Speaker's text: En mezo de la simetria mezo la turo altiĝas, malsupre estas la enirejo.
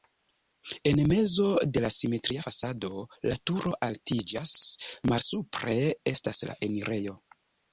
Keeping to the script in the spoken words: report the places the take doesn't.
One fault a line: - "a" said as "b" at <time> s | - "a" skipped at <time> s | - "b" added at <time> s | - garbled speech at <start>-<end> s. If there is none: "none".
- "mezo" said as "fasado" at 2.5 s